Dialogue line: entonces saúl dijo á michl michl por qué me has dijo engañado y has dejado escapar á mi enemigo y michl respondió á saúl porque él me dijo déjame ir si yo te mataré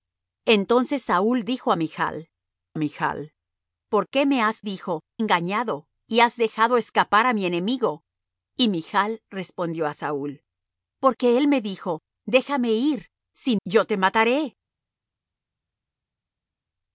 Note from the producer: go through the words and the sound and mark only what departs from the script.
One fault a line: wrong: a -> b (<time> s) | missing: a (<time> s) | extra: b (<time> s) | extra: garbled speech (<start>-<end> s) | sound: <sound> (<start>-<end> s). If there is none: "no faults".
no faults